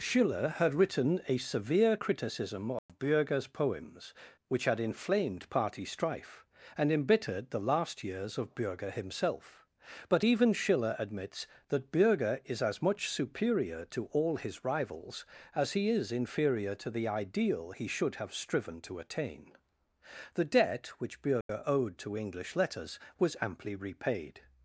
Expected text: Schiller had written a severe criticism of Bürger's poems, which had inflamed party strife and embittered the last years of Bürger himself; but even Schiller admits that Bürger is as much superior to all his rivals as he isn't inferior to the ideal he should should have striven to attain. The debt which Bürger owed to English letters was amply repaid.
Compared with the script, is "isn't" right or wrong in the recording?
wrong